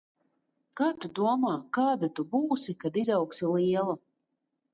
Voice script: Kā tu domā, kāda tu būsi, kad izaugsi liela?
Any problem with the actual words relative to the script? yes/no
no